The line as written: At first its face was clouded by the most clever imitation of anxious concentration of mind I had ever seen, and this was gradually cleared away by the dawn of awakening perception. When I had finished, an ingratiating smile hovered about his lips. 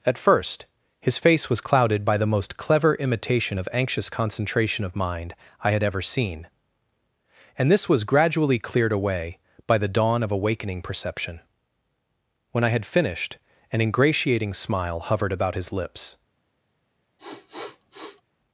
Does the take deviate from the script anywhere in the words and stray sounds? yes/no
yes